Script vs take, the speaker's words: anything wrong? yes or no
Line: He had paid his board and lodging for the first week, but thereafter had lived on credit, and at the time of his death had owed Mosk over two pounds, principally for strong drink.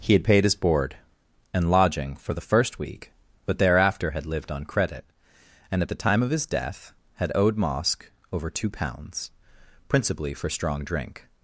no